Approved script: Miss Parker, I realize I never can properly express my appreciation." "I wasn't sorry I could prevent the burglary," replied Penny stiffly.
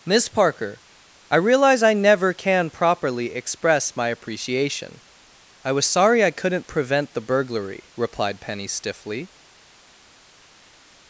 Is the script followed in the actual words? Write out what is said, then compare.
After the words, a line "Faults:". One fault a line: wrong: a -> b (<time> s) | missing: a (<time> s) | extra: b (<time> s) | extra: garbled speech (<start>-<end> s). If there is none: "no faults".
Miss Parker, I realize I never can properly express my appreciation." "I was sorry I couldn't prevent the burglary," replied Penny stiffly.
Faults:
wrong: wasn't -> was (5.7 s)
wrong: could -> couldn't (6.3 s)